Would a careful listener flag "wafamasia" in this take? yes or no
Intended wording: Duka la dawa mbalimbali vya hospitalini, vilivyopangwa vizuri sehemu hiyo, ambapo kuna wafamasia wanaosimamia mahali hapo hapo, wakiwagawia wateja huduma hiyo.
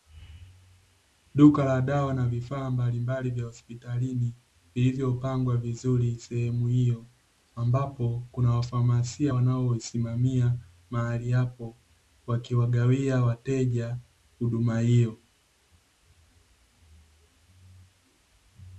no